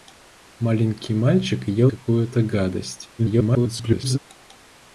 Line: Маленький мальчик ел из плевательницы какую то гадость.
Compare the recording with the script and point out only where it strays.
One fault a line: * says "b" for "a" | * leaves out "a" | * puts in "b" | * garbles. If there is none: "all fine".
* leaves out "из плевательницы"
* garbles